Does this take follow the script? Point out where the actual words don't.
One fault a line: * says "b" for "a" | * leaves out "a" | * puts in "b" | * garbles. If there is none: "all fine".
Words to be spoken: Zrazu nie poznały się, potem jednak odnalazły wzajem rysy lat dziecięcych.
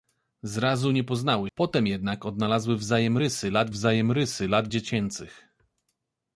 * leaves out "się"
* puts in "wzajem rysy lat"